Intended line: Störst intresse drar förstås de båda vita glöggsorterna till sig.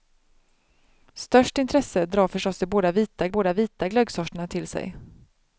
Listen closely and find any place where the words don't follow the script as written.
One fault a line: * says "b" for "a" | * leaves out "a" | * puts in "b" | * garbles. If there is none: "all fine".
* puts in "båda vita"